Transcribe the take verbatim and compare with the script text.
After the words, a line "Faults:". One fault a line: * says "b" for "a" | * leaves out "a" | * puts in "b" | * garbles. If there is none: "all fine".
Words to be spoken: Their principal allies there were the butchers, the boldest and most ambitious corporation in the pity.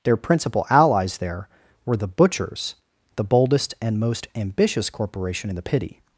Their principal allies there were the butchers, the boldest and most ambitious corporation in the pity.
Faults:
all fine